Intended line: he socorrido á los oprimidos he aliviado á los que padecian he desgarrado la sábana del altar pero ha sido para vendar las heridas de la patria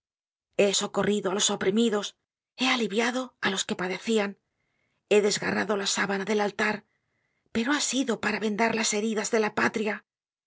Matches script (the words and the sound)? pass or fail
pass